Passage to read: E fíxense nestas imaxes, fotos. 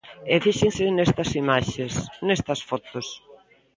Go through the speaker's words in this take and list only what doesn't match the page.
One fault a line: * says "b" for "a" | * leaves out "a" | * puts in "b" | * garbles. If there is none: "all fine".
* puts in "nestas"